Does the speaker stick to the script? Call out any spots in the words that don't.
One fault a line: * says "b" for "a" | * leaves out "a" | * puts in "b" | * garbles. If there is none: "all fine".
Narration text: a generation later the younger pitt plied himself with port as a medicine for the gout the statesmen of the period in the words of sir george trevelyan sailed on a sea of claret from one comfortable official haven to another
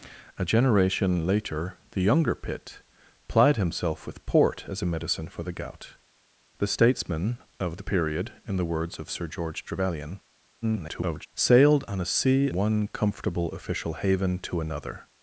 * garbles
* leaves out "of claret from"